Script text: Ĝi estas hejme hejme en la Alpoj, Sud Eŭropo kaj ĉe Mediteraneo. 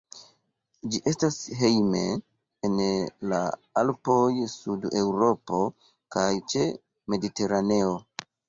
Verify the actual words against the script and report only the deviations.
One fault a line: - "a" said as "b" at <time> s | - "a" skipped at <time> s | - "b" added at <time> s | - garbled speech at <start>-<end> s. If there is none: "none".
- "hejme" skipped at 2.0 s